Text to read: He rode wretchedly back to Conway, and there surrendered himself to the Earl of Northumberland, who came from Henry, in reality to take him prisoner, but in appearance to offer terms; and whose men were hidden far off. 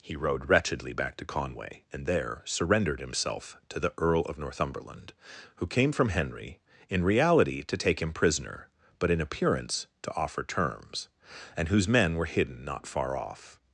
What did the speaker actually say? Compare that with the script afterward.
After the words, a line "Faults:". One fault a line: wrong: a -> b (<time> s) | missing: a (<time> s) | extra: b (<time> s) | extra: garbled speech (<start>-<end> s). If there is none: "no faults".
He rode wretchedly back to Conway, and there surrendered himself to the Earl of Northumberland, who came from Henry, in reality to take him prisoner, but in appearance to offer terms; and whose men were hidden not far off.
Faults:
extra: not (12.6 s)